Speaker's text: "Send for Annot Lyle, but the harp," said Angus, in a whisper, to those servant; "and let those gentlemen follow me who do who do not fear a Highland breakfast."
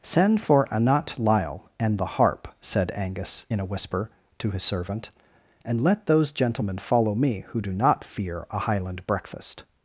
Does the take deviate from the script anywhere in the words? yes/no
yes